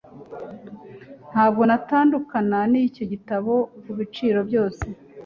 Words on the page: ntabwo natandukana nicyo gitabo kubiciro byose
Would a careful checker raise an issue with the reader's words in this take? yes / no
no